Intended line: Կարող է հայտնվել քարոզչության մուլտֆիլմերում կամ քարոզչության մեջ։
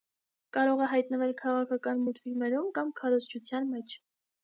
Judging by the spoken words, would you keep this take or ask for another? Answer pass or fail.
fail